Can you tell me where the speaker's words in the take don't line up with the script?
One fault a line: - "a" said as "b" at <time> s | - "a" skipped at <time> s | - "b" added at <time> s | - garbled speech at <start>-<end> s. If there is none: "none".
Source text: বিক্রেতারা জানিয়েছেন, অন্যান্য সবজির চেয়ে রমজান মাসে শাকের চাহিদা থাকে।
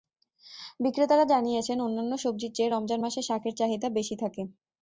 - "বেশি" added at 4.0 s